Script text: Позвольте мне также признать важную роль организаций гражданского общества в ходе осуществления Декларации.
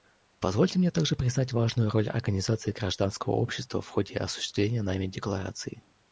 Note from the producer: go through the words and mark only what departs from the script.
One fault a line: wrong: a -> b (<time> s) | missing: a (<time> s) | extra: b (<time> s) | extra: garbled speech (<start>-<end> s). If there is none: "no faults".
extra: нами (4.8 s)